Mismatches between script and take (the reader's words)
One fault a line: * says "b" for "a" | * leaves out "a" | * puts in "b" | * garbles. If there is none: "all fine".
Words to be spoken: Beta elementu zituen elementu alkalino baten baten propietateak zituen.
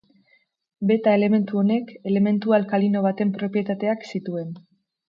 * says "honek" for "zituen"
* leaves out "baten"